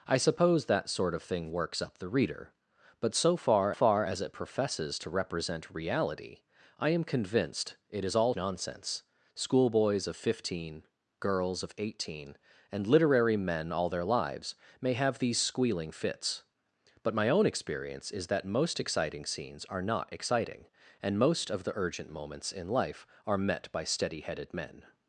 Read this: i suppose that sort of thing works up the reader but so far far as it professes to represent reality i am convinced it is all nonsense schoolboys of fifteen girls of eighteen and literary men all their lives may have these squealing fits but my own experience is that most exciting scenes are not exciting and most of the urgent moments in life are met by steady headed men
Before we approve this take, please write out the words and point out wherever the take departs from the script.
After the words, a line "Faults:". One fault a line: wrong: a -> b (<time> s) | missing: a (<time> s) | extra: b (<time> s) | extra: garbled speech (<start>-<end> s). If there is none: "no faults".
i suppose that sort of thing works up the reader but so far far as it professes to represent reality i am convinced it is all nonsense schoolboys of fifteen girls of eighteen and literary men all their lives may have these squealing fits but my own experience is that most exciting scenes are not exciting and most of the urgent moments in life are met by steady headed men
Faults:
no faults